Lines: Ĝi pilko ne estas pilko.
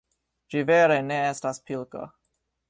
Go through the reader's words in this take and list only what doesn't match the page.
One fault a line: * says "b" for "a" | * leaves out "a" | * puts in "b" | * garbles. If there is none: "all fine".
* says "vere" for "pilko"